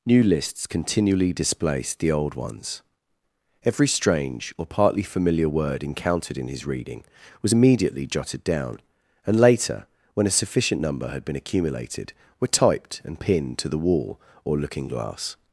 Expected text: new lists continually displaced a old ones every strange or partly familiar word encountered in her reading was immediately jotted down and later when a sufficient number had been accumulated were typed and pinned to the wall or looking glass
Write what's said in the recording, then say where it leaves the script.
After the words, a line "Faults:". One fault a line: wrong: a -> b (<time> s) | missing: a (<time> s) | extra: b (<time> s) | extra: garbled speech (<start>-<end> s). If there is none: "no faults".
new lists continually displaced the old ones every strange or partly familiar word encountered in his reading was immediately jotted down and later when a sufficient number had been accumulated were typed and pinned to the wall or looking glass
Faults:
wrong: a -> the (2.0 s)
wrong: her -> his (6.5 s)